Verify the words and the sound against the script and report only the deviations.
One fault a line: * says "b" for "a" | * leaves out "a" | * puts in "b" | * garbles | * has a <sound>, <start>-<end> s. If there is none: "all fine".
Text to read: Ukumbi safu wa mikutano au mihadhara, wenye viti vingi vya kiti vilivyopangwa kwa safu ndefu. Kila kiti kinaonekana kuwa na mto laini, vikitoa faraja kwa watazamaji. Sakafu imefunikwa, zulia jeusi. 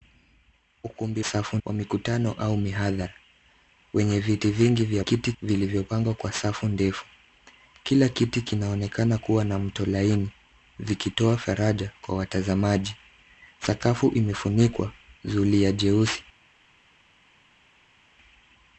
all fine